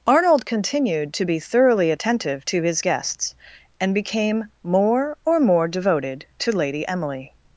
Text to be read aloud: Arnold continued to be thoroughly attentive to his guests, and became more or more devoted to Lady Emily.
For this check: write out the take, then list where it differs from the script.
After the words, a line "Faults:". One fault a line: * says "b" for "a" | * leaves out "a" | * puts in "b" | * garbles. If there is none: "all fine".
Arnold continued to be thoroughly attentive to his guests, and became more or more devoted to Lady Emily.
Faults:
all fine